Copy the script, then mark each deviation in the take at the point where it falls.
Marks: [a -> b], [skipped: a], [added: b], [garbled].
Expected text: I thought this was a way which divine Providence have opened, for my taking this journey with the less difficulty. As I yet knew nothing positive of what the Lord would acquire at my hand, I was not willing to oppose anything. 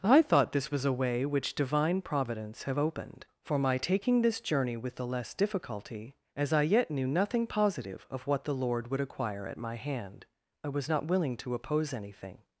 I thought this was a way which divine Providence have opened, for my taking this journey with the less difficulty. As I yet knew nothing positive of what the Lord would acquire at my hand, I was not willing to oppose anything.